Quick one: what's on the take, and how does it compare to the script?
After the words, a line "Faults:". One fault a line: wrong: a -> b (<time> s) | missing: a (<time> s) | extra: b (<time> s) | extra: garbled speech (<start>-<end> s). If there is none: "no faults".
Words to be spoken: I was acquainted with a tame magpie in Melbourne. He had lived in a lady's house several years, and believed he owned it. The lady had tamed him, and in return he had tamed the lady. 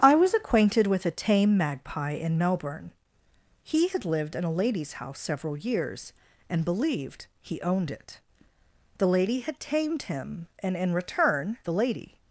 I was acquainted with a tame magpie in Melbourne. He had lived in a lady's house several years, and believed he owned it. The lady had tamed him, and in return the lady.
Faults:
missing: he had tamed (11.6 s)